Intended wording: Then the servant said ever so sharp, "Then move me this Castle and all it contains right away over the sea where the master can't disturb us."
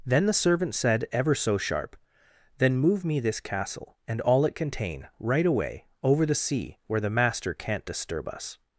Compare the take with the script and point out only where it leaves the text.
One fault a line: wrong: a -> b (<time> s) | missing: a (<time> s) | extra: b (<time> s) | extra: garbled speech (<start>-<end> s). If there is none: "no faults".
wrong: contains -> contain (4.6 s)